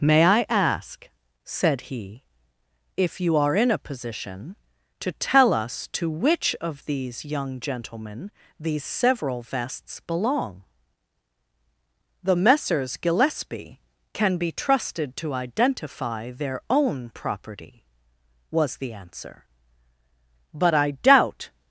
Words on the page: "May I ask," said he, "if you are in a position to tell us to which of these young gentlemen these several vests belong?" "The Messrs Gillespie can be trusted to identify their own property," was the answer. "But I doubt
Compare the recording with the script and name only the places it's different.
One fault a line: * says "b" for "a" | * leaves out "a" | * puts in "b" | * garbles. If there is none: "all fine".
all fine